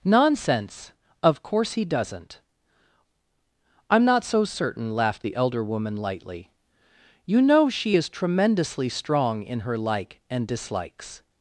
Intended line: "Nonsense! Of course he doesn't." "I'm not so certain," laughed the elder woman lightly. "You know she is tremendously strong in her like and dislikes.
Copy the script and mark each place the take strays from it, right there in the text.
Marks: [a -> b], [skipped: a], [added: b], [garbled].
"Nonsense! Of course he doesn't." "I'm not so certain," laughed the elder woman lightly. "You know she is tremendously strong in her like and dislikes.